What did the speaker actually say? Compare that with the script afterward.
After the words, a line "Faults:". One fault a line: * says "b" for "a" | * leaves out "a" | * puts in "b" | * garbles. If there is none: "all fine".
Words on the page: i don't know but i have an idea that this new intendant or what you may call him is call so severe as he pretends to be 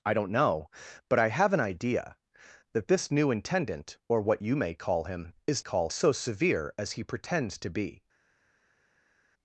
i don't know but i have an idea that this new intendant or what you may call him is call so severe as he pretends to be
Faults:
all fine